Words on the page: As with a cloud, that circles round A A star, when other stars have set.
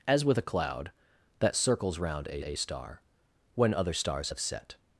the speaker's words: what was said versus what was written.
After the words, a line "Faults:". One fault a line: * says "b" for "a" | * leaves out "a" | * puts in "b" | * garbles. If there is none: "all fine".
As with a cloud, that circles round A A star, when other stars have set.
Faults:
all fine